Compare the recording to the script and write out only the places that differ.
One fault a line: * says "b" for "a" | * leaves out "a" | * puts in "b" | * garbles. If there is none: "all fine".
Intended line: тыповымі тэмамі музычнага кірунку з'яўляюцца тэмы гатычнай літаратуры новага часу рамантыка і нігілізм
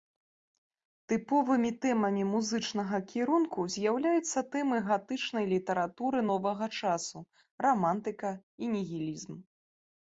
all fine